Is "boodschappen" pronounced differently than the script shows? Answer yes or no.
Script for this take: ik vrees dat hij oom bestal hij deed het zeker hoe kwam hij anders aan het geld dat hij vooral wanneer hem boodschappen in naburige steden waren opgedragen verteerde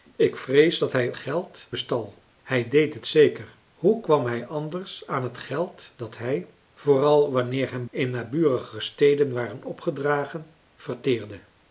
yes